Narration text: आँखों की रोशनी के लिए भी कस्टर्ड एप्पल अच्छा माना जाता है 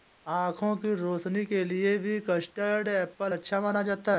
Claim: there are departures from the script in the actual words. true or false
false